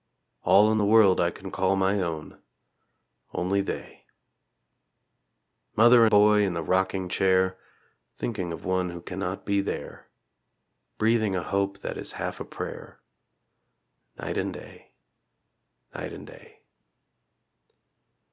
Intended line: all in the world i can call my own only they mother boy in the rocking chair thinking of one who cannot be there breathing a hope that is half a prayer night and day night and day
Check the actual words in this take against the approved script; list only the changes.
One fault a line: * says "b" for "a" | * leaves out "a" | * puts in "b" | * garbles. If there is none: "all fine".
all fine